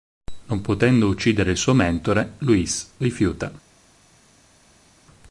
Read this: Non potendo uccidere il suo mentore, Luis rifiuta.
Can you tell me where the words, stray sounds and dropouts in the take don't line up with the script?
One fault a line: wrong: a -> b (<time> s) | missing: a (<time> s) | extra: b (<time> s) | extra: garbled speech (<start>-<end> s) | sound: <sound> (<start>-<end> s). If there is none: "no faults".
no faults